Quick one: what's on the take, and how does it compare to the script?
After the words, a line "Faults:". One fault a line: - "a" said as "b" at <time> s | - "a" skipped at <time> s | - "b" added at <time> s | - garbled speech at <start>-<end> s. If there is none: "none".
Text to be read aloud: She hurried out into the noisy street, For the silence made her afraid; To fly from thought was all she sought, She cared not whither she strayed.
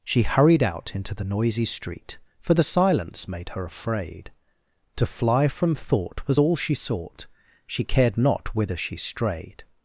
She hurried out into the noisy street, For the silence made her afraid; To fly from thought was all she sought, She cared not whither she strayed.
Faults:
none